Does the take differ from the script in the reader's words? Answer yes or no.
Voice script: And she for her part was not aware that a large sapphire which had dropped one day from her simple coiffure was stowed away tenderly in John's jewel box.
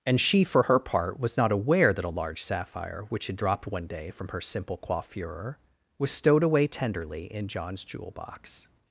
no